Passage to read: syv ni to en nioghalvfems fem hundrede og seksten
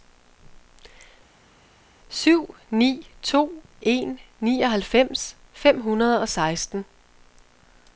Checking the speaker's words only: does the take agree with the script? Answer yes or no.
yes